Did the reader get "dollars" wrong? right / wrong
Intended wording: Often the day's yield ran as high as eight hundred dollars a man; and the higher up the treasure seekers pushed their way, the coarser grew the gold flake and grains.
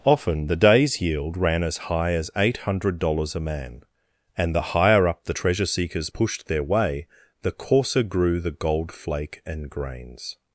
right